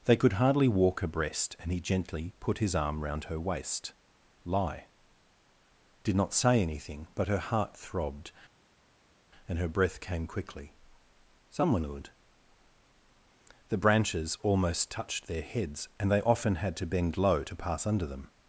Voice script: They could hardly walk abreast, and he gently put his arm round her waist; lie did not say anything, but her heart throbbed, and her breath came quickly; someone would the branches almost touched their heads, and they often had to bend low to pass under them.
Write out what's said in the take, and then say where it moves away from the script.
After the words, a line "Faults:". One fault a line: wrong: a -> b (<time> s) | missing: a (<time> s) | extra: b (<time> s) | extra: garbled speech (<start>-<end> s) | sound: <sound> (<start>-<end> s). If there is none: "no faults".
They could hardly walk abreast, and he gently put his arm round her waist; lie did not say anything, but her heart throbbed, and her breath came quickly; someone would the branches almost touched their heads, and they often had to bend low to pass under them.
Faults:
no faults